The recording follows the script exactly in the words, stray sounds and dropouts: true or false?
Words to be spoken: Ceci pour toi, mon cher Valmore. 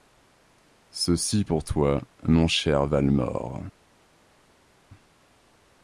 true